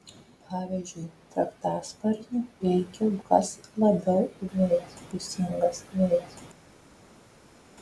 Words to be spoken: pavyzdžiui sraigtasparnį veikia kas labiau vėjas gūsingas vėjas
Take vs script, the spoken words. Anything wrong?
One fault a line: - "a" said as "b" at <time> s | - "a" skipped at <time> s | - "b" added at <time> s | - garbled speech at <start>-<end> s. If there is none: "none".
none